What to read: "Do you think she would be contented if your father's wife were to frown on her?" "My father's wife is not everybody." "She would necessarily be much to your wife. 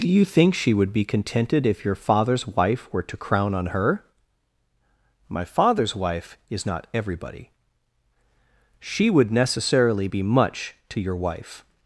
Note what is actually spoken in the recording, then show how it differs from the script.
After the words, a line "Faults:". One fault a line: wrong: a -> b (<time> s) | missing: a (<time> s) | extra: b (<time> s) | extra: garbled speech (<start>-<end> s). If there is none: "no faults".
"Do you think she would be contented if your father's wife were to crown on her?" "My father's wife is not everybody." "She would necessarily be much to your wife.
Faults:
wrong: frown -> crown (3.1 s)